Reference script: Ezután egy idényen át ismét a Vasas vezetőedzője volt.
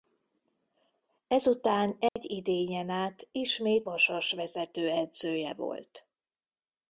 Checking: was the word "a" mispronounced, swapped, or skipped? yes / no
yes